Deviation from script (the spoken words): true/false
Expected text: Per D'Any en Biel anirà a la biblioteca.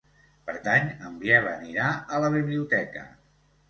false